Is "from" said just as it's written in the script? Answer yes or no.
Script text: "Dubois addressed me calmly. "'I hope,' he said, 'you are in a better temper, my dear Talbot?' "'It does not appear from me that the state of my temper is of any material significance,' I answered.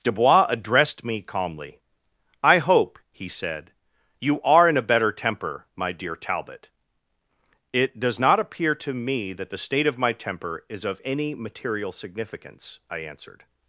no